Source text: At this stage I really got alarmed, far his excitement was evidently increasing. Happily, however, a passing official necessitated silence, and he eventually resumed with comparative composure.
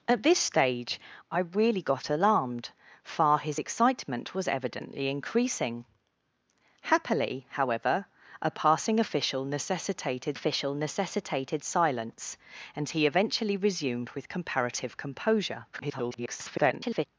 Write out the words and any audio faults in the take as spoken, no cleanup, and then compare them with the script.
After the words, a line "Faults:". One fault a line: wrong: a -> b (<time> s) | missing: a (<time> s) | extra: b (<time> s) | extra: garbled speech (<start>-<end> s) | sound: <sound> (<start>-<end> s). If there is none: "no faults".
At this stage I really got alarmed, far his excitement was evidently increasing. Happily, however, a passing official necessitated official necessitated silence, and he eventually resumed with comparative composure. [garbled]
Faults:
extra: official necessitated (10.3 s)
extra: garbled speech (15.7-17.1 s)